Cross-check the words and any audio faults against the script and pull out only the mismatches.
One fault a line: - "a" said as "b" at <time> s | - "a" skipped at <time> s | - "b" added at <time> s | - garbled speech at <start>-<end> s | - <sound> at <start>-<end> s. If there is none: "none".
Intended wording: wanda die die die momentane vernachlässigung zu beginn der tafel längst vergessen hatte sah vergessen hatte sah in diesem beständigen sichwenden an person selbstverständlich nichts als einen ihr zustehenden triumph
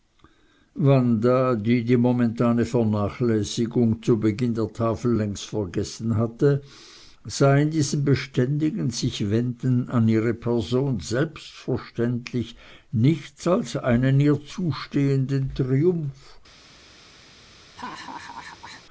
- "die" skipped at 1.9 s
- "vergessen hatte sah" skipped at 7.5 s
- "ihre" added at 10.1 s
- laugh at 17.8-18.8 s